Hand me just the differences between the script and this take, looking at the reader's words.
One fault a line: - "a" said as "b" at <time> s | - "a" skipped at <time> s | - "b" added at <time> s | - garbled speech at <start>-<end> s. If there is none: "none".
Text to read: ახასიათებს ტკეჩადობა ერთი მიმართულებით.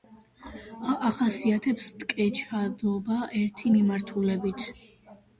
none